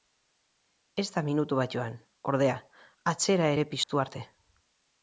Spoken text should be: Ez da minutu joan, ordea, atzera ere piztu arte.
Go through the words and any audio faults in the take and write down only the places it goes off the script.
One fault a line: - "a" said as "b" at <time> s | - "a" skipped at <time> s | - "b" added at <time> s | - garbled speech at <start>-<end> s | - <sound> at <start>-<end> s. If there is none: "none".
- "bat" added at 1.6 s
- dropout at 3.8-3.9 s